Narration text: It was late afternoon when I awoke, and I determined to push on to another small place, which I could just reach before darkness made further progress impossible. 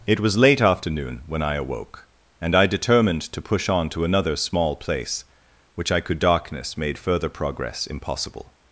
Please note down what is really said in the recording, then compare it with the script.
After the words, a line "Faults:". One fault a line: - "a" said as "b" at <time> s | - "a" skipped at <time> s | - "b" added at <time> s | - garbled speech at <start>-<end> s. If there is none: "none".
It was late afternoon when I awoke, and I determined to push on to another small place, which I could darkness made further progress impossible.
Faults:
- "just reach before" skipped at 6.2 s